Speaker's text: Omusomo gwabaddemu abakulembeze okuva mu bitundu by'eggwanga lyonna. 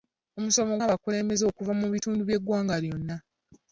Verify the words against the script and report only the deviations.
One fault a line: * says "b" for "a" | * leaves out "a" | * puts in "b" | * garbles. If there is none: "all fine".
* leaves out "gwabaddemu"